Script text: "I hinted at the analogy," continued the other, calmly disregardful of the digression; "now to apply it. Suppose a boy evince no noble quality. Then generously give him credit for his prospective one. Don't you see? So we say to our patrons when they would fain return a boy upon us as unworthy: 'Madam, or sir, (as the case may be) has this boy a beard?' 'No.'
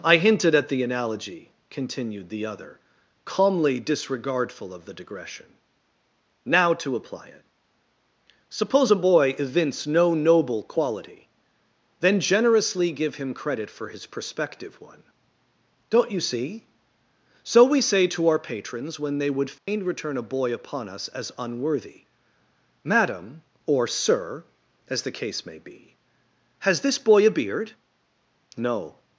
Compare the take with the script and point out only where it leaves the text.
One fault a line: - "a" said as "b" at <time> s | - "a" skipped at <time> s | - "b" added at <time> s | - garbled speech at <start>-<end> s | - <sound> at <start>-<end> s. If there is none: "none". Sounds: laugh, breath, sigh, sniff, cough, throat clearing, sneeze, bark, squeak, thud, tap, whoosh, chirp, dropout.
- dropout at 19.6-19.7 s